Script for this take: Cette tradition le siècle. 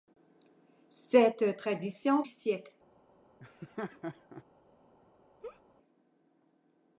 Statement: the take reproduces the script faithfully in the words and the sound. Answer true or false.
false